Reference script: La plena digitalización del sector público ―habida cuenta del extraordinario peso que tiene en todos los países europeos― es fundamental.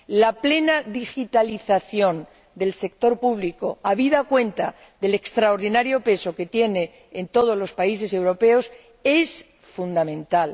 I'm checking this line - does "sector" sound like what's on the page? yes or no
yes